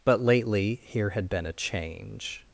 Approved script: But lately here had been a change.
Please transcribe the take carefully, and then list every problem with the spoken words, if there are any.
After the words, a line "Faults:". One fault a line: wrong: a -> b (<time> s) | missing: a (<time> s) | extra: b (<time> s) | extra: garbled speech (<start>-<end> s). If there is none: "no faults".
But lately here had been a change.
Faults:
no faults